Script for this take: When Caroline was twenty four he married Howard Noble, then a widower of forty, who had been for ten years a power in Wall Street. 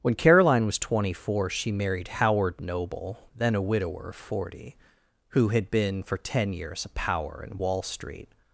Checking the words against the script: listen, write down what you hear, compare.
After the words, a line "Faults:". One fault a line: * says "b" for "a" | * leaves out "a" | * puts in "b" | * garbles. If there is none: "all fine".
When Caroline was twenty four she married Howard Noble, then a widower of forty, who had been for ten years a power in Wall Street.
Faults:
* says "she" for "he"